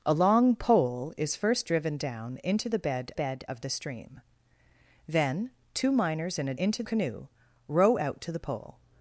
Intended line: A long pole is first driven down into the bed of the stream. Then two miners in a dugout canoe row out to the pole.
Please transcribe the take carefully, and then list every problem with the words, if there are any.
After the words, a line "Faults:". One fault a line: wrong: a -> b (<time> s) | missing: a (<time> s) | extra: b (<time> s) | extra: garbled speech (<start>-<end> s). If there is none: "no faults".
A long pole is first driven down into the bed bed of the stream. Then two miners in a into canoe row out to the pole.
Faults:
extra: bed (3.1 s)
wrong: dugout -> into (6.6 s)